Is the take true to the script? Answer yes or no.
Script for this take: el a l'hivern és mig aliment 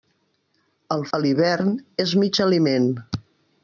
yes